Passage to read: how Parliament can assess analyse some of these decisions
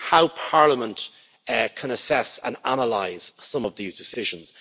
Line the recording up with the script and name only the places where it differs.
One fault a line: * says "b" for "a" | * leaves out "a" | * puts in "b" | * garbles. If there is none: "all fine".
* puts in "and"